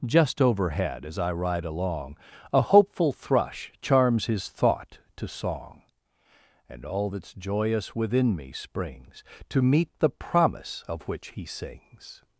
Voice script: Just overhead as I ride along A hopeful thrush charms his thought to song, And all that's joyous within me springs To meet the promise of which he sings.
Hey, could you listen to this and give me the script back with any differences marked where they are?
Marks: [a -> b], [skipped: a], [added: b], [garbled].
Just overhead as I ride along A hopeful thrush charms his thought to song, And all that's joyous within me springs To meet the promise of which he sings.